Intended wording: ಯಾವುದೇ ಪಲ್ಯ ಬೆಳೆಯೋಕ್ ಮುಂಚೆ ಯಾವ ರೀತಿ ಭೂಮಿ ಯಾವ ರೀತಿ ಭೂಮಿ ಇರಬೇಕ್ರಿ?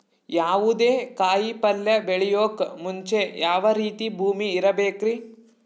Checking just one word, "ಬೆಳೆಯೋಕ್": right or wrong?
right